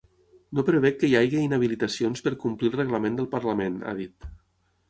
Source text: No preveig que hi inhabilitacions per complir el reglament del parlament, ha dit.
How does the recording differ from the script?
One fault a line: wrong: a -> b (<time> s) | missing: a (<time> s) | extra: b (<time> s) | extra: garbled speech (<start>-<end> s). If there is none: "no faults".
extra: hagi (1.2 s)